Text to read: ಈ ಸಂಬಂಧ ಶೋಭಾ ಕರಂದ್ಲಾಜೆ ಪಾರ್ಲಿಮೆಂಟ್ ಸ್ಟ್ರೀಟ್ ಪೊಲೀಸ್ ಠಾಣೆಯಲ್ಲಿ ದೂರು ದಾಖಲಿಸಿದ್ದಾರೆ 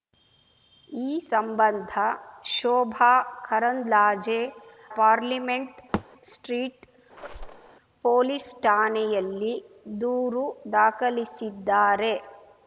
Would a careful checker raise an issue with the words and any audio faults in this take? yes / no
yes